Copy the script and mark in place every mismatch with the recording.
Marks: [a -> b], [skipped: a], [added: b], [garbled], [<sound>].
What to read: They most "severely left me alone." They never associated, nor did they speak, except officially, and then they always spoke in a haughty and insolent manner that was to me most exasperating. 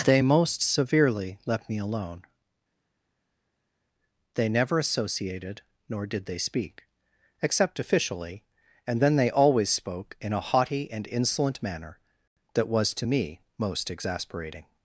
They most "severely left me alone." They never associated, nor did they speak, except officially, and then they always spoke in a haughty and insolent manner that was to me most exasperating.